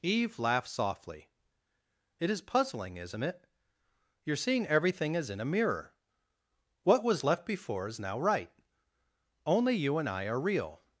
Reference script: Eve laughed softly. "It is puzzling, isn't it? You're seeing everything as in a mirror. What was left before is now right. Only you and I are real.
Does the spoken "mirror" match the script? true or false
true